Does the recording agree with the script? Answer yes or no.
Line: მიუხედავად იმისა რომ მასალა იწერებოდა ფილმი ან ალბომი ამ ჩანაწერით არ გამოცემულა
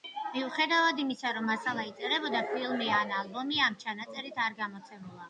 yes